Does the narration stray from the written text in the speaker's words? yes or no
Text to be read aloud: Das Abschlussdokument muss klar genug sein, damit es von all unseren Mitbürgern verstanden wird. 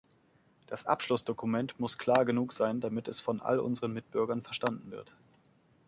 no